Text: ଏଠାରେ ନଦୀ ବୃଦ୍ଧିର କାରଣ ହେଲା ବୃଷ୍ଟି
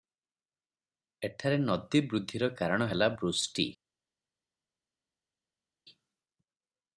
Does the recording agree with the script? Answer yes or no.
yes